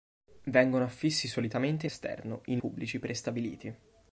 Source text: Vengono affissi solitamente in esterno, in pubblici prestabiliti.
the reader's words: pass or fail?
pass